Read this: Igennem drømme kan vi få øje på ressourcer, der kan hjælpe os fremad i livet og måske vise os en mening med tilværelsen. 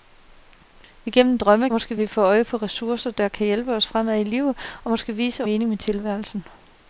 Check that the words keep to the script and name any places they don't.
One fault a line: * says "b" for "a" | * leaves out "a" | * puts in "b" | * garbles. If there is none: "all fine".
* says "måske" for "kan"
* leaves out "os en"